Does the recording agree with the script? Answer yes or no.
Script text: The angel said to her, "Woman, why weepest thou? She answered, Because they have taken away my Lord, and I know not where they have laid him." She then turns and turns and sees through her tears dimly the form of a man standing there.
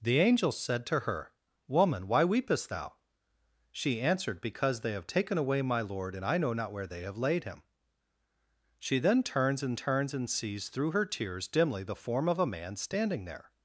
yes